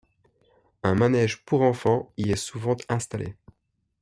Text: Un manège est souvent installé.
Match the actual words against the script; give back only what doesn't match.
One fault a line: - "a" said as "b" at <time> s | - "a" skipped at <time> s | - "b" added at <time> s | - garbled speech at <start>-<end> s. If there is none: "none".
- "pour enfants y" added at 1.4 s